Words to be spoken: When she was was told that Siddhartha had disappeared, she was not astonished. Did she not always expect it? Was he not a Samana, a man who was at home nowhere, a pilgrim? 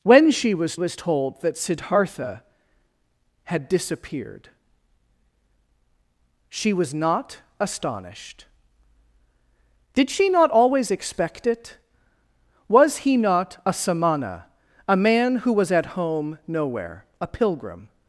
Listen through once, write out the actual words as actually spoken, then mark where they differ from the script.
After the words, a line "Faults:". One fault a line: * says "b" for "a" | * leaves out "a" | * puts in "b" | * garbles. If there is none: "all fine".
When she was was told that Siddhartha had disappeared, she was not astonished. Did she not always expect it? Was he not a Samana, a man who was at home nowhere, a pilgrim?
Faults:
all fine